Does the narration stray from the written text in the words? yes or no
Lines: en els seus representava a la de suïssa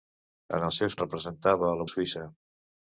no